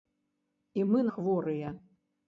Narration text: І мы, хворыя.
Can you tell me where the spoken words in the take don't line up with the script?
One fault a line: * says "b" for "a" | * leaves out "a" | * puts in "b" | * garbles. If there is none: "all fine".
all fine